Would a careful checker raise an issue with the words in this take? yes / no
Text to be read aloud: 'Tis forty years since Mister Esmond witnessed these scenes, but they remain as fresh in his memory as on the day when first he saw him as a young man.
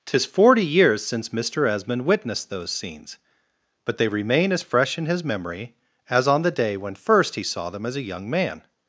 yes